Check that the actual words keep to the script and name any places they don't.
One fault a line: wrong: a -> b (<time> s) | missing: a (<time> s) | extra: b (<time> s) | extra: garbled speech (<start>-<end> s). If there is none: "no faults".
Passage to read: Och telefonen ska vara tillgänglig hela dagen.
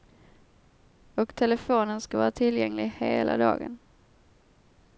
no faults